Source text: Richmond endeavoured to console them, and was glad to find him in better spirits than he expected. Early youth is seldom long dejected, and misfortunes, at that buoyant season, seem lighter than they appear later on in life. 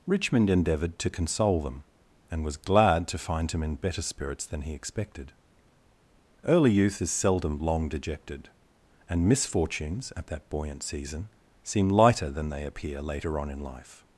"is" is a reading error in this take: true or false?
false